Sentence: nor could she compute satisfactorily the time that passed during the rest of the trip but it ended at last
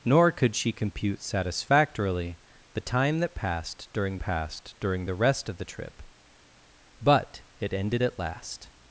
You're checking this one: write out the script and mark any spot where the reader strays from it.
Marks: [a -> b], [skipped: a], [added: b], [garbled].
nor could she compute satisfactorily the time that passed during [added: passed during] the rest of the trip but it ended at last